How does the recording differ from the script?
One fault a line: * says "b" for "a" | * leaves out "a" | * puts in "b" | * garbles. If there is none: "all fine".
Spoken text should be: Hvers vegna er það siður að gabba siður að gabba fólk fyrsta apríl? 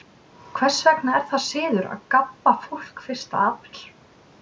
* leaves out "siður að gabba"